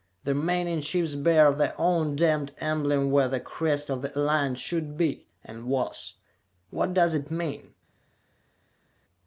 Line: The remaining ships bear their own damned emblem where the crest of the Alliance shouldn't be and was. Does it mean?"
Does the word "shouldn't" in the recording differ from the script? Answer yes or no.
yes